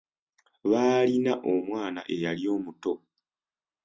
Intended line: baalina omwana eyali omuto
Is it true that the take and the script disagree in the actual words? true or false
false